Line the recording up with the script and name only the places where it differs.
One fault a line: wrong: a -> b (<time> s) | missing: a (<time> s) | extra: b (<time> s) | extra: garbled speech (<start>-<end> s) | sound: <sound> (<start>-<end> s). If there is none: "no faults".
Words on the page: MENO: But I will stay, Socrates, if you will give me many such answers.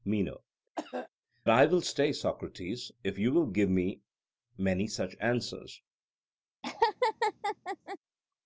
missing: But (0.4 s)
sound: cough (0.8-1.1 s)
sound: laugh (6.6-8.0 s)